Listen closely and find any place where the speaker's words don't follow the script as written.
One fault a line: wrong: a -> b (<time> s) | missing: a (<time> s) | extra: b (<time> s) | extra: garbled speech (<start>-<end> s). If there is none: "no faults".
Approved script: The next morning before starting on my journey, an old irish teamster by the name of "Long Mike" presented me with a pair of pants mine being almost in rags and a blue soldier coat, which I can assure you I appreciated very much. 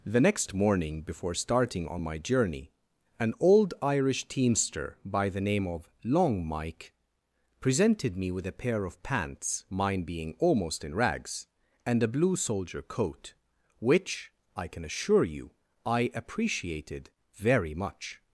no faults